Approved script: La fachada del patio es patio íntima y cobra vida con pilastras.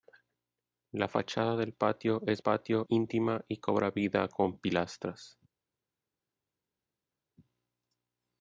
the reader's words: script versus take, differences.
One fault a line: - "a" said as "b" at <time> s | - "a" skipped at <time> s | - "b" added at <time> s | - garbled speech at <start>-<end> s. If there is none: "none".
none